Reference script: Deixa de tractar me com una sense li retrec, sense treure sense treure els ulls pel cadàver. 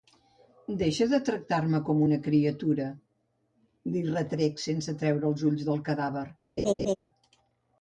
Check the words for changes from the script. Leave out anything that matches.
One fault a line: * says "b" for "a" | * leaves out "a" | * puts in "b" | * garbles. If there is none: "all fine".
* says "criatura" for "sense"
* leaves out "sense treure"
* says "del" for "pel"